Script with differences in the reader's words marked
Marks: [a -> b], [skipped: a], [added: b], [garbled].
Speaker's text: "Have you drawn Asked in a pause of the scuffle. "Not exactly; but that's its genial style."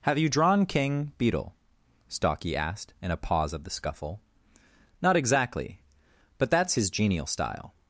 "Have you drawn [added: King Beetle Stalky] Asked in a pause of the scuffle. "Not exactly; but that's [its -> his] genial style."